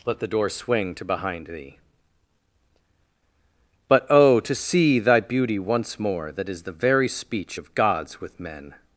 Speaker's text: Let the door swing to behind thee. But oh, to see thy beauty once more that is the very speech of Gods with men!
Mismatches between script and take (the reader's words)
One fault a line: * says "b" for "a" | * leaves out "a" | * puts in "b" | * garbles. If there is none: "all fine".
all fine